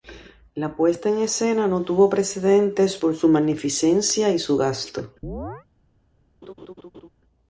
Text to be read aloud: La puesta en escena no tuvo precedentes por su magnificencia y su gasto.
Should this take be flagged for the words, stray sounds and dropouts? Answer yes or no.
yes